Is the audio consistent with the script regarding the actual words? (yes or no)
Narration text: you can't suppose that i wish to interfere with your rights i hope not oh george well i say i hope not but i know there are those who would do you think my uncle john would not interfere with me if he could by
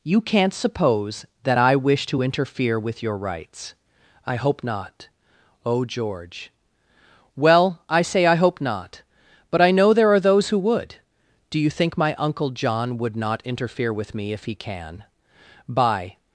no